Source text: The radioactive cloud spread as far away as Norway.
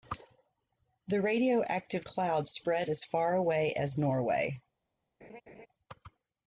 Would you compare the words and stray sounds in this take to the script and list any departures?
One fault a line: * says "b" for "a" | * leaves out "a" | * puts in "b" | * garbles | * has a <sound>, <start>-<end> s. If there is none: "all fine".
* has a laugh, 5.2-5.7 s